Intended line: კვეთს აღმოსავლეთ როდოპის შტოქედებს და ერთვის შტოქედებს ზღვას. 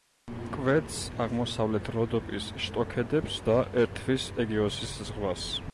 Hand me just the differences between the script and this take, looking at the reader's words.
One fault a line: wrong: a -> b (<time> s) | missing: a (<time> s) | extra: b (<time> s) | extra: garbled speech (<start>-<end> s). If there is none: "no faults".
wrong: შტოქედებს -> ეგეოსის (4.4 s)